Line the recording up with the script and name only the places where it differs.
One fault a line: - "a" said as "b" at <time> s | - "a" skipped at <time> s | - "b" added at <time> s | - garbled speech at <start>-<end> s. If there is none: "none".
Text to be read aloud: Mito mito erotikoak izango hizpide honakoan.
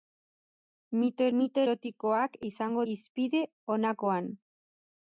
none